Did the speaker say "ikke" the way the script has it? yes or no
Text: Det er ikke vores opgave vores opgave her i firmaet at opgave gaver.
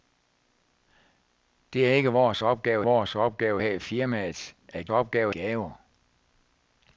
yes